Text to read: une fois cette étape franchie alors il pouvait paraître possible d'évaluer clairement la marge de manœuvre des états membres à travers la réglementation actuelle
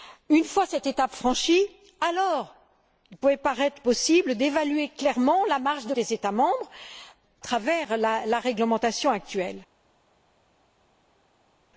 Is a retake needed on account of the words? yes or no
yes